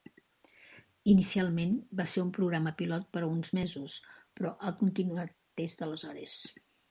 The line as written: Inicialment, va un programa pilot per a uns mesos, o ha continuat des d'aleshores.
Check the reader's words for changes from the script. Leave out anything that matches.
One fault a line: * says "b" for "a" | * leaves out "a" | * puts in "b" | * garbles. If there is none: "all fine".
* puts in "ser"
* says "però" for "o"